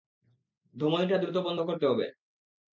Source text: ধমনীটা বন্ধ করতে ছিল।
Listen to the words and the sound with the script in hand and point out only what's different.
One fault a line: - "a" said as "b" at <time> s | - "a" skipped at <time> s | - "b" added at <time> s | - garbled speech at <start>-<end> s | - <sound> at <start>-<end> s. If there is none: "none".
- "দ্রুত" added at 1.2 s
- "ছিল" said as "হবে" at 1.9 s